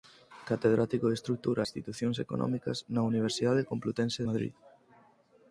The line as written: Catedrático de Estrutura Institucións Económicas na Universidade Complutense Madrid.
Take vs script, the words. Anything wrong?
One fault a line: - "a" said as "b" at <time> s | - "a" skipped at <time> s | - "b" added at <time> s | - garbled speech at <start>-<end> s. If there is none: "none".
none